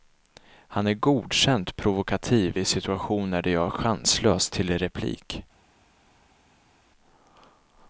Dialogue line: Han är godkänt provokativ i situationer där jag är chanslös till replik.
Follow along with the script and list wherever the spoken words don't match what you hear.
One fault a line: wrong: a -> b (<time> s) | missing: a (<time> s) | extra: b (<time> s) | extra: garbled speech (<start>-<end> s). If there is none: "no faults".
no faults